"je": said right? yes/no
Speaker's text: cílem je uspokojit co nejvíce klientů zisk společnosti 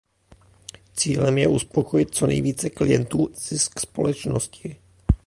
yes